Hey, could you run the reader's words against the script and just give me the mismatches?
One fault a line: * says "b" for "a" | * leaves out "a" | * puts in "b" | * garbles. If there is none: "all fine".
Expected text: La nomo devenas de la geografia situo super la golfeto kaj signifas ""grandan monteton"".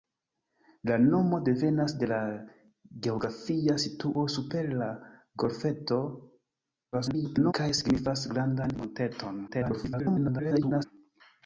* garbles
* garbles